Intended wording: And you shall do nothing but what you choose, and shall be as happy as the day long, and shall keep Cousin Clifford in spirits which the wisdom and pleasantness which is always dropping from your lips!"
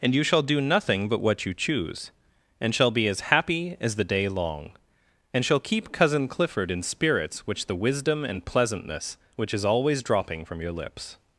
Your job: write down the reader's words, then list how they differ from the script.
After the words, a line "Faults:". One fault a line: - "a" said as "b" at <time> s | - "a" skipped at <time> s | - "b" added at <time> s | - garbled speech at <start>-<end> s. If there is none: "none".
And you shall do nothing but what you choose, and shall be as happy as the day long, and shall keep Cousin Clifford in spirits which the wisdom and pleasantness which is always dropping from your lips!"
Faults:
none